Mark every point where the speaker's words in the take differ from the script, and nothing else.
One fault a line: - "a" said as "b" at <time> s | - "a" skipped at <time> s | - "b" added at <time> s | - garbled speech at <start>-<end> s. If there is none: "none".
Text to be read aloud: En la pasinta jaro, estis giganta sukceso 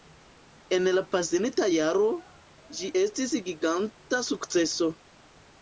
- "ĝi" added at 2.8 s